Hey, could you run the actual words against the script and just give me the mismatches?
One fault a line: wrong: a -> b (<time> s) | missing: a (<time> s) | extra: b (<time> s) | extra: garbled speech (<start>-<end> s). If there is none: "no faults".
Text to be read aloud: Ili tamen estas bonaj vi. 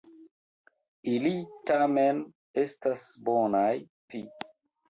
no faults